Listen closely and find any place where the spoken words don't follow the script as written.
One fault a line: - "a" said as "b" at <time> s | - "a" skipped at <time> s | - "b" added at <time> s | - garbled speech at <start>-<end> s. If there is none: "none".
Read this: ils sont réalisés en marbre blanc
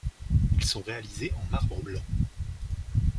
none